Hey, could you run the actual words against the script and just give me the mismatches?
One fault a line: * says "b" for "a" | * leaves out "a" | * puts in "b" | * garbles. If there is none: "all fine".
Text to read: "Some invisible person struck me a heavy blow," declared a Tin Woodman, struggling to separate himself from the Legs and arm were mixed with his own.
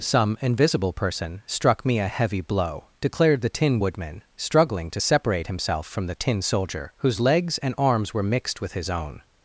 * says "the" for "a"
* puts in "Tin Soldier whose"
* says "arms" for "arm"